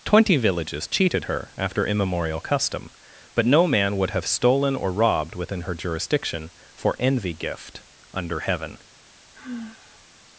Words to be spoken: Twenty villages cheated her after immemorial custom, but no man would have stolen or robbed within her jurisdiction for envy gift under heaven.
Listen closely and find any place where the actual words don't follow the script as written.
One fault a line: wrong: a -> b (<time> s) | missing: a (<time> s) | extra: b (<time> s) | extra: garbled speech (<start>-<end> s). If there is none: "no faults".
no faults